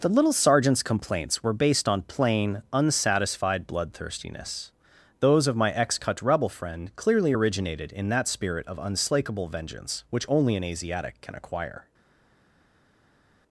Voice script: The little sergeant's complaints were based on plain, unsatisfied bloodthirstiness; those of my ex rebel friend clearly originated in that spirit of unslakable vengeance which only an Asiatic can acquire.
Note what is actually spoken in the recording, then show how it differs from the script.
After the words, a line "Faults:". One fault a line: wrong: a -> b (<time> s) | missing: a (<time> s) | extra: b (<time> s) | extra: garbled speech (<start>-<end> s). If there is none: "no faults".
The little sergeant's complaints were based on plain, unsatisfied bloodthirstiness; those of my ex cut rebel friend clearly originated in that spirit of unslakable vengeance which only an Asiatic can acquire.
Faults:
extra: cut (6.0 s)